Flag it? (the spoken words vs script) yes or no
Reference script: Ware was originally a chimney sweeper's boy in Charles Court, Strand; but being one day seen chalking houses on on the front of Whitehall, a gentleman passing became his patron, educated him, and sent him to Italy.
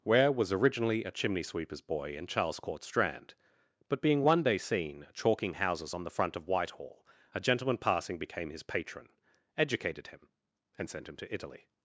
yes